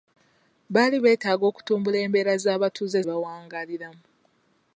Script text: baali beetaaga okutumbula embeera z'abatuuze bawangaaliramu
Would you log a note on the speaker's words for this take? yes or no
no